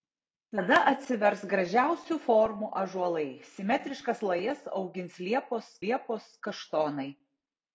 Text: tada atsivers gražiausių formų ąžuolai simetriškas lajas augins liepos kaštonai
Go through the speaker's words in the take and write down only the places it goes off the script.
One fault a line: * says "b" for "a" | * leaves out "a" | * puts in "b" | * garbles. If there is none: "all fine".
* puts in "liepos"